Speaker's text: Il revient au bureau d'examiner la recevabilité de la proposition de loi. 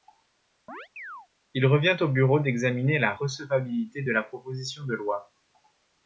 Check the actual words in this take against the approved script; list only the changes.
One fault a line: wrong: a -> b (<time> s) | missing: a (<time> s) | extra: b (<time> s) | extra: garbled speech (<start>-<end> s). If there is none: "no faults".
no faults